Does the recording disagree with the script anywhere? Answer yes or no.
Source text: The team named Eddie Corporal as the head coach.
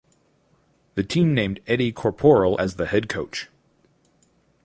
no